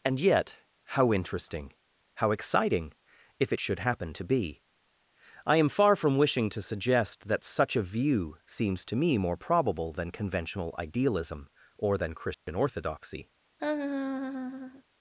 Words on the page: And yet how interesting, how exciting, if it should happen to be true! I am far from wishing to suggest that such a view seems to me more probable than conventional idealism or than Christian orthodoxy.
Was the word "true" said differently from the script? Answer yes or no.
yes